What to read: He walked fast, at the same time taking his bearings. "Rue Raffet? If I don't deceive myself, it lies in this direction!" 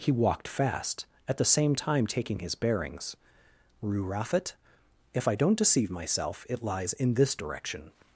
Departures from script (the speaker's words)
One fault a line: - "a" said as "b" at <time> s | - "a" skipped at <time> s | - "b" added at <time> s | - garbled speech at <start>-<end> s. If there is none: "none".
none